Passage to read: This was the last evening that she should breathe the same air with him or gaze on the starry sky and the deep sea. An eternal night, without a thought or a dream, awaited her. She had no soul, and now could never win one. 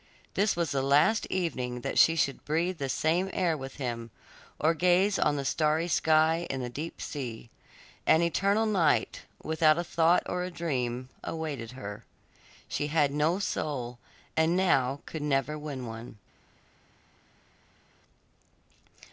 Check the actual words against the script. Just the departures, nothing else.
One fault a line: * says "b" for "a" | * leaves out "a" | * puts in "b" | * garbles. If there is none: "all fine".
all fine